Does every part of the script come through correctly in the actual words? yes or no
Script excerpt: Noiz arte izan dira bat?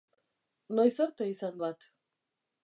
no